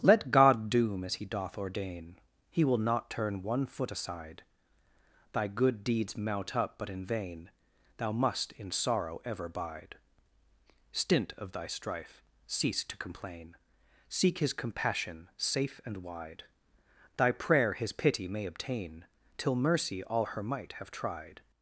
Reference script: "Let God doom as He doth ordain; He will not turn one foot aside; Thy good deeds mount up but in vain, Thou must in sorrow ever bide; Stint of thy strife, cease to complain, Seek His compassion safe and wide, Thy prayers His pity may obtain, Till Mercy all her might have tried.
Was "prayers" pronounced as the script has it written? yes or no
no